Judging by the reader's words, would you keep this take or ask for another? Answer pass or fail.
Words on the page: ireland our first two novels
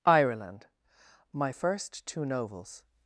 fail